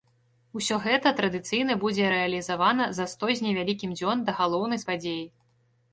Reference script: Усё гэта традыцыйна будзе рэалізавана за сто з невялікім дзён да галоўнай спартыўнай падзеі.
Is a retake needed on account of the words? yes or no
yes